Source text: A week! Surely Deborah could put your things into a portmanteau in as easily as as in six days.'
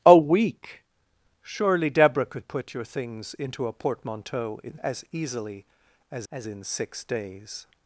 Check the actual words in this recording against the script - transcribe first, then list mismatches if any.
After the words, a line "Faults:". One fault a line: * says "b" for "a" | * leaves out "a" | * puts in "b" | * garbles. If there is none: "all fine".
A week! Surely Deborah could put your things into a portmanteau in as easily as as in six days.'
Faults:
all fine